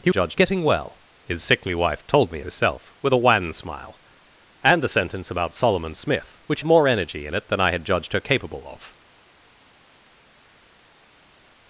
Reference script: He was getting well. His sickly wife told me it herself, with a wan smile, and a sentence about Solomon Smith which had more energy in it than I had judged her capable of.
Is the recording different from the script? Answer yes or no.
yes